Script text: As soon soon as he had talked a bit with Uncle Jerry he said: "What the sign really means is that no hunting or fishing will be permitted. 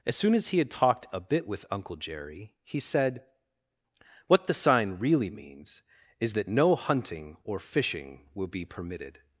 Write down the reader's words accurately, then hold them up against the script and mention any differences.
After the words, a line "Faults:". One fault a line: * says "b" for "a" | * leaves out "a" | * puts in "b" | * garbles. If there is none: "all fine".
As soon as he had talked a bit with Uncle Jerry he said: "What the sign really means is that no hunting or fishing will be permitted.
Faults:
* leaves out "soon"